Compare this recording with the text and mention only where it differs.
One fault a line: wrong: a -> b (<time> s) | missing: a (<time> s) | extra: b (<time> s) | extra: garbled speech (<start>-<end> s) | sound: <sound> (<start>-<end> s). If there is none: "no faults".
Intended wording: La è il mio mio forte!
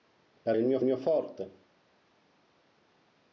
no faults